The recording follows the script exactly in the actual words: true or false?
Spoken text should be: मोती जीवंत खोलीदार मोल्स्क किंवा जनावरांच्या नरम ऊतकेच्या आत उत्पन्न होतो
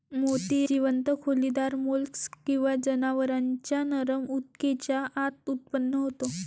true